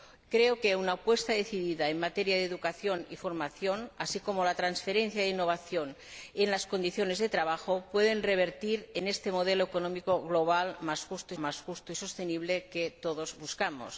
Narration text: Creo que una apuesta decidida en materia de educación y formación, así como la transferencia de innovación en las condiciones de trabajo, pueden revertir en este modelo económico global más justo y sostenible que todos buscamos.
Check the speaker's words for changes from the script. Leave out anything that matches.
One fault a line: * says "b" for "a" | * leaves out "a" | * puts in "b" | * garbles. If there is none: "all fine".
* puts in "más justo"